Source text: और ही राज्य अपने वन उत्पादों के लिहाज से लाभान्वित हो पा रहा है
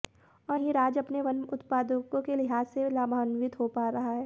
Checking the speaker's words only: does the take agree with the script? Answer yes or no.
yes